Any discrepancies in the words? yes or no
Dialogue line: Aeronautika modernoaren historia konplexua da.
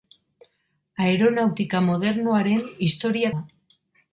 yes